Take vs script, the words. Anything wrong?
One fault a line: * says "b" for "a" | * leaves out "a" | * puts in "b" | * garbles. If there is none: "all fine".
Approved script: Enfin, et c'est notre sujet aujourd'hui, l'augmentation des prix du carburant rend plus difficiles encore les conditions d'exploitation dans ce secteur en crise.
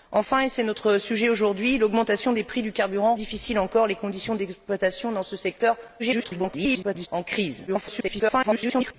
* leaves out "rend plus"
* garbles
* garbles